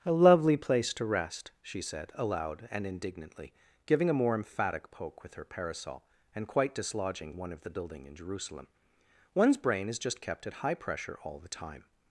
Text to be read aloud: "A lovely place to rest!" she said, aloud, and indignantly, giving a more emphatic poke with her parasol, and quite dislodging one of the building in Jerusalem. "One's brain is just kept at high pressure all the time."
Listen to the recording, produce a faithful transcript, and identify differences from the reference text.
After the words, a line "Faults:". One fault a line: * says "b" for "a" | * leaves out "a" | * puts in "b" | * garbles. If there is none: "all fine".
"A lovely place to rest!" she said, aloud, and indignantly, giving a more emphatic poke with her parasol, and quite dislodging one of the building in Jerusalem. "One's brain is just kept at high pressure all the time."
Faults:
all fine